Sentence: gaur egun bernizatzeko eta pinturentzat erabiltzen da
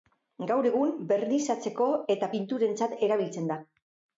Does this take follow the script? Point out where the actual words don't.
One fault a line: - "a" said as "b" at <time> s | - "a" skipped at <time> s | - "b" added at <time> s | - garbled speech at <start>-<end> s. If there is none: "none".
none